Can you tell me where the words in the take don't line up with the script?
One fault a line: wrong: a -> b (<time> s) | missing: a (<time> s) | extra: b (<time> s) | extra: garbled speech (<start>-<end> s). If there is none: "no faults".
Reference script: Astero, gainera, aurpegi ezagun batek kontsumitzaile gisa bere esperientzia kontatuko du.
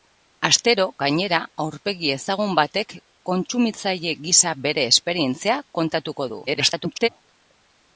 extra: garbled speech (6.5-7.1 s)